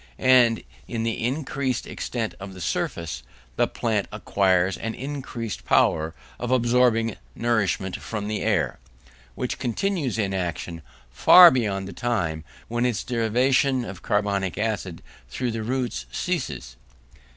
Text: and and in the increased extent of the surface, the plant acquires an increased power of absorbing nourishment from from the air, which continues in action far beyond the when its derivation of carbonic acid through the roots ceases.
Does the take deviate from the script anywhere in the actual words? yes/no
yes